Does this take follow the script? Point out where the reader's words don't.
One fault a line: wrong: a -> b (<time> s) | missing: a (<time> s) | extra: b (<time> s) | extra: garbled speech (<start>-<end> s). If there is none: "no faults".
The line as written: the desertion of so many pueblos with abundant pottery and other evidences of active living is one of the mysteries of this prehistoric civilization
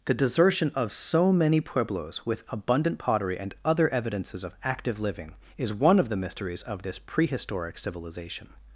no faults